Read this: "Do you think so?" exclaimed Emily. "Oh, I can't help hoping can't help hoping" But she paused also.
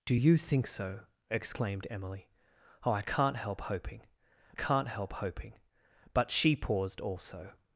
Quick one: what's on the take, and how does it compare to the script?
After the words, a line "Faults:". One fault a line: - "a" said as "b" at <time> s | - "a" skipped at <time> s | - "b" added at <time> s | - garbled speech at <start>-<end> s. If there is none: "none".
"Do you think so?" exclaimed Emily. "Oh, I can't help hoping can't help hoping" But she paused also.
Faults:
none